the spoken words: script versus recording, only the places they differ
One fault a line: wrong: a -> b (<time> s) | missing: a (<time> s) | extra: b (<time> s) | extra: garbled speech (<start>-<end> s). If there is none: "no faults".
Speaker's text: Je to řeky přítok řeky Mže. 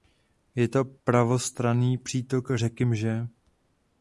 wrong: řeky -> pravostranný (0.8 s)